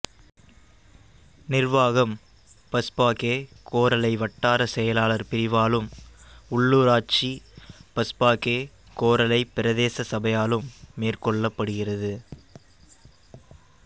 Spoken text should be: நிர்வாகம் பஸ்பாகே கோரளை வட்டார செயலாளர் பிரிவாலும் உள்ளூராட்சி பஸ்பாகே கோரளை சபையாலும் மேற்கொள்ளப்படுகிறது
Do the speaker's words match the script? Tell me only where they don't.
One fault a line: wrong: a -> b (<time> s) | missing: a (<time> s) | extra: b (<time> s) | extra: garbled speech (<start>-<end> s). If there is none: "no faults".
extra: பிரதேச (9.6 s)